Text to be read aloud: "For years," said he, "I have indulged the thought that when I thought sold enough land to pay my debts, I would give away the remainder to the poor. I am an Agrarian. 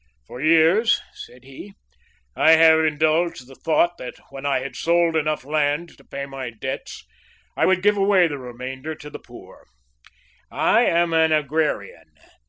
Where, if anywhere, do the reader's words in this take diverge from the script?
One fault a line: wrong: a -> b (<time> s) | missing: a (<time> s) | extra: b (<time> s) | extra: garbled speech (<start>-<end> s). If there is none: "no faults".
wrong: thought -> had (4.6 s)